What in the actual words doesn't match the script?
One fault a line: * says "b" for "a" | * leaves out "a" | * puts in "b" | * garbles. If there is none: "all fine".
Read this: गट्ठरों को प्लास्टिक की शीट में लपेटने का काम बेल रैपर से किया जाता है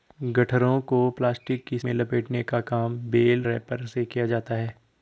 * leaves out "शीट"